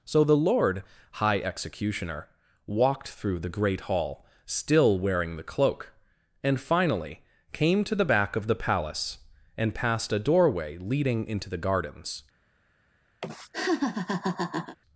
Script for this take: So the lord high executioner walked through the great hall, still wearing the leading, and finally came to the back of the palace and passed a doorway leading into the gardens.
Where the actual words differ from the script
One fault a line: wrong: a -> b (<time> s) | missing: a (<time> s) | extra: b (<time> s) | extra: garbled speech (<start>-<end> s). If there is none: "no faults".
wrong: leading -> cloak (5.4 s)